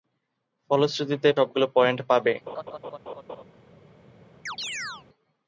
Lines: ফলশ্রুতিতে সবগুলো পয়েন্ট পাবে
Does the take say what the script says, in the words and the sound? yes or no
no